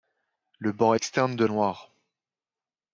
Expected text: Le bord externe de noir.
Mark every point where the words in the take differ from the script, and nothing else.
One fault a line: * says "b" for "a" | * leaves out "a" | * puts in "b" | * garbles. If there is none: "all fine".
all fine